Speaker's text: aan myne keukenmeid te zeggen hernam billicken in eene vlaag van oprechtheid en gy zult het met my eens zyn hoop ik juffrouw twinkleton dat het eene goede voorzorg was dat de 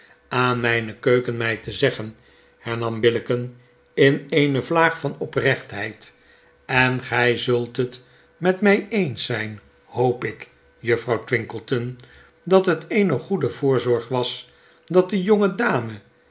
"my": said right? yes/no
yes